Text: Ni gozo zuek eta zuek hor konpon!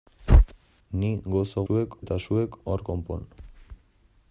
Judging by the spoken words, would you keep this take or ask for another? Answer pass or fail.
pass